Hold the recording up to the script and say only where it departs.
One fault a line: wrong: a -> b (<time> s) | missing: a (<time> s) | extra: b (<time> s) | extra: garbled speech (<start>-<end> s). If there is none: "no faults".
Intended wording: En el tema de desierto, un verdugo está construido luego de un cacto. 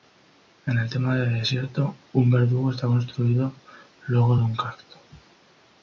no faults